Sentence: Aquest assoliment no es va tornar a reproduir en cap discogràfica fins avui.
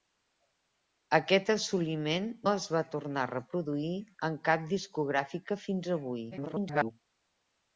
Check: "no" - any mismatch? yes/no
yes